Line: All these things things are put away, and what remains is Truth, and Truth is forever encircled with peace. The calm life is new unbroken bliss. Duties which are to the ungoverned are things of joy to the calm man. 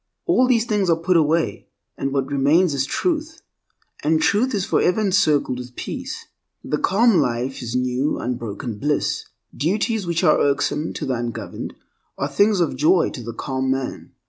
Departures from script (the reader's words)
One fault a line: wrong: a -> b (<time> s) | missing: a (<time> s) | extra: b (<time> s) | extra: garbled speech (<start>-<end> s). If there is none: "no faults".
missing: things (0.9 s)
extra: irksome (10.4 s)